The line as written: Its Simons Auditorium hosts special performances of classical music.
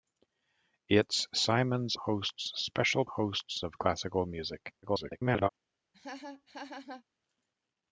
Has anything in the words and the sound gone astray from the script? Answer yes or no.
yes